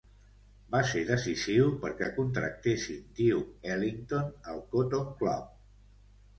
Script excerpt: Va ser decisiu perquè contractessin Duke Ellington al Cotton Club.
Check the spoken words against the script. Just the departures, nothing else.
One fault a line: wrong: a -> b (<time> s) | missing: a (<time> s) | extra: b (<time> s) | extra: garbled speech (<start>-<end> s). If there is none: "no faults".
no faults